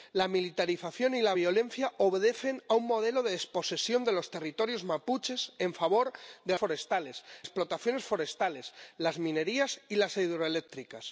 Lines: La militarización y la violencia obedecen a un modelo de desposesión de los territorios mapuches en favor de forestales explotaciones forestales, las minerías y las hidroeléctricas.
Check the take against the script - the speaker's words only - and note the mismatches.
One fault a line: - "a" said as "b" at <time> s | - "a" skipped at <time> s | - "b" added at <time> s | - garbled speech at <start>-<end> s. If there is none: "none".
none